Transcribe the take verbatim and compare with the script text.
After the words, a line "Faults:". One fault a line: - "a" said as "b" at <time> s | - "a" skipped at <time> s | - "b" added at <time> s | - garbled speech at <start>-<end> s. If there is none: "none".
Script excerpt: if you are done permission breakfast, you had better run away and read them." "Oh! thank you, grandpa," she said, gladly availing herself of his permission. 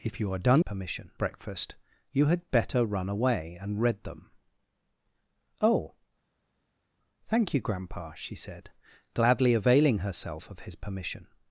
if you are done permission breakfast, you had better run away and read them." "Oh! thank you, grandpa," she said, gladly availing herself of his permission.
Faults:
none